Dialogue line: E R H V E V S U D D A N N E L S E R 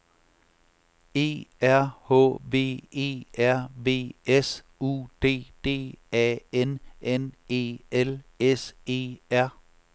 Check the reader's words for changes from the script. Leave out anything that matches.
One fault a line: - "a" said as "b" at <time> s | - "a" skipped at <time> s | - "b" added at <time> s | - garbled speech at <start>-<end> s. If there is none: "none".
- "R" added at 3.4 s